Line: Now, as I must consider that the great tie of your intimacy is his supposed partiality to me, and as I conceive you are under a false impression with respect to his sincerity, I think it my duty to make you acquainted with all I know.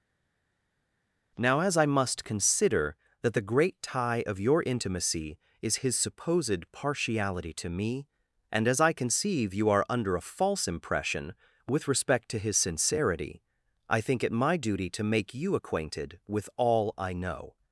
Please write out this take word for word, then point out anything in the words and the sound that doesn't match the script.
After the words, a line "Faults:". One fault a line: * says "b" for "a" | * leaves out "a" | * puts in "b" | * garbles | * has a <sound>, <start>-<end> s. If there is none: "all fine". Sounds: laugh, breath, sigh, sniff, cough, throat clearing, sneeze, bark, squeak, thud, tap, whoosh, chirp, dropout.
Now, as I must consider that the great tie of your intimacy is his supposed partiality to me, and as I conceive you are under a false impression with respect to his sincerity, I think it my duty to make you acquainted with all I know.
Faults:
all fine